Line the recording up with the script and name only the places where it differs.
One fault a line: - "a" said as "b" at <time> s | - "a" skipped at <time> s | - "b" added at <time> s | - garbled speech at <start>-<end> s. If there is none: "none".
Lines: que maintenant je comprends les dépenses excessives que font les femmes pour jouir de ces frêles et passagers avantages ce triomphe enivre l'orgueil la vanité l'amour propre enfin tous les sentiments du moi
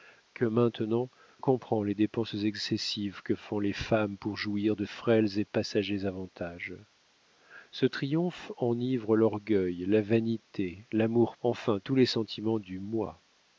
- "je" skipped at 1.1 s
- "ces" skipped at 4.8 s
- "propre" skipped at 11.4 s